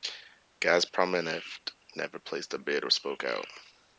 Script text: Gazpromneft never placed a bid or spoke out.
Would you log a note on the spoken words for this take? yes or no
no